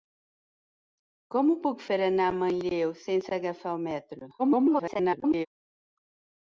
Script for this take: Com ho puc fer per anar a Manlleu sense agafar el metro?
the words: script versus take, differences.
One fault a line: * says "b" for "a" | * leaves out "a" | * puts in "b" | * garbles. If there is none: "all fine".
* leaves out "fer"
* garbles